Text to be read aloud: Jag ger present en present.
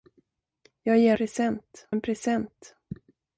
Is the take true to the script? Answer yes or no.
yes